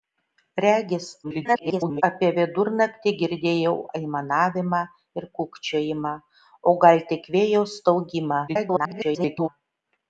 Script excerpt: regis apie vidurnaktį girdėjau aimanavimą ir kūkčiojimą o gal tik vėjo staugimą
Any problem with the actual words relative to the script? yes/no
yes